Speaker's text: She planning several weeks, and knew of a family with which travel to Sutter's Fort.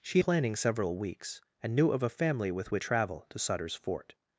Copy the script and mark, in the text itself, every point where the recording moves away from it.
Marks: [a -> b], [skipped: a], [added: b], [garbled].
She planning several weeks, and knew of a family with which travel to Sutter's Fort.